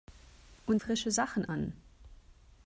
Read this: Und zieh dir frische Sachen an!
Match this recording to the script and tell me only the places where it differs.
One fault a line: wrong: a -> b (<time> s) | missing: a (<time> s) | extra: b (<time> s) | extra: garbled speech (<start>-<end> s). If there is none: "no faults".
missing: zieh dir (0.8 s)